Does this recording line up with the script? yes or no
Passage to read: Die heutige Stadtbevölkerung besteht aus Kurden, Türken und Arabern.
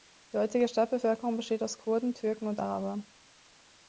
yes